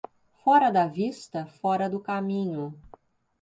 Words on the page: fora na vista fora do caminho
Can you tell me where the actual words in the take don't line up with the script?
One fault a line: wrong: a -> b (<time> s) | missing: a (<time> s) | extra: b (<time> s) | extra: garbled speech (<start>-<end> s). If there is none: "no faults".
wrong: na -> da (0.7 s)